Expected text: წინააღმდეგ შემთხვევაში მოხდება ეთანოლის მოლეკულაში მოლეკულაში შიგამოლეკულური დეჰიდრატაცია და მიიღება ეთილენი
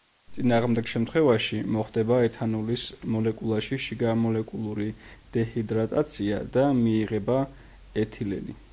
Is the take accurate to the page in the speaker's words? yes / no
no